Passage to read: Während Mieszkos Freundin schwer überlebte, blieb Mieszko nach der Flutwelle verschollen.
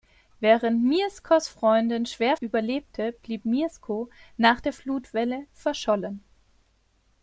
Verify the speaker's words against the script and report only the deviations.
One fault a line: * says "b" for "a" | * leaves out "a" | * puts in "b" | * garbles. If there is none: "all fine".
all fine